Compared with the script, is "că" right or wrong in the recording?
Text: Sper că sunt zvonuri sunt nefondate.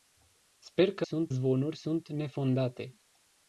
right